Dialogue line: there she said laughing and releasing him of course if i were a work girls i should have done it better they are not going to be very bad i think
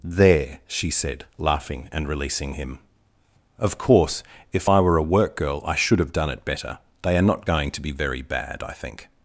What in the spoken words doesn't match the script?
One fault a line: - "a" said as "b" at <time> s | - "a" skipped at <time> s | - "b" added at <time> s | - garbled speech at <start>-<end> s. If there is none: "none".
- "girls" said as "girl" at 5.4 s